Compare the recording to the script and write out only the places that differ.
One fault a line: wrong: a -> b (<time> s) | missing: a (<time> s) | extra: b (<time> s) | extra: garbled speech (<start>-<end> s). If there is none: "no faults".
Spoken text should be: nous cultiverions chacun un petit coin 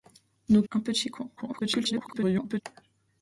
missing: cultiverions chacun (0.6 s)
extra: garbled speech (1.4-2.6 s)